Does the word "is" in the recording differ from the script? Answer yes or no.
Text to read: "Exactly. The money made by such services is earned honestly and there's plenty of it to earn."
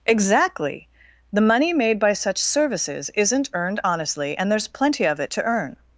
yes